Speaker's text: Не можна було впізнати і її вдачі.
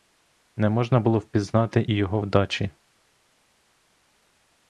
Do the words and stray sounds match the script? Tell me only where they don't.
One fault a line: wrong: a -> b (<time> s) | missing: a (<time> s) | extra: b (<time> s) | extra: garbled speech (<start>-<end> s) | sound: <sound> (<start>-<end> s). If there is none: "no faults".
wrong: її -> його (1.9 s)